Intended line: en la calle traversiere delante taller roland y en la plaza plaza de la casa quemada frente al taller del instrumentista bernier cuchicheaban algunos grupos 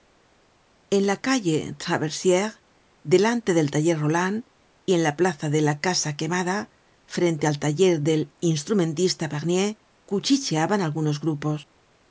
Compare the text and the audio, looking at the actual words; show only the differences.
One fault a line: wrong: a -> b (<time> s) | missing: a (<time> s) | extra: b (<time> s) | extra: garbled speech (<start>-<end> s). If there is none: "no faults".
extra: del (3.6 s)
missing: plaza (5.5 s)